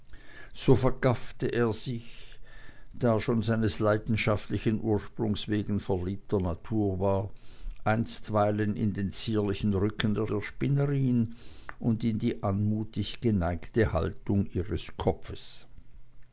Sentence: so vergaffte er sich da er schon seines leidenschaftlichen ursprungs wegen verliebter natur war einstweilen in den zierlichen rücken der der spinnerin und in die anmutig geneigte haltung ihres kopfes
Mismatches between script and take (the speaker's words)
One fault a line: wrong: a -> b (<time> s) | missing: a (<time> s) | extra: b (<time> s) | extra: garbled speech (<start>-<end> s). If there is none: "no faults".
no faults